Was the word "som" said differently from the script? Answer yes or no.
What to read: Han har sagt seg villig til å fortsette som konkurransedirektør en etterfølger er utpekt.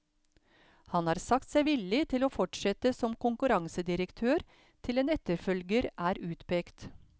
no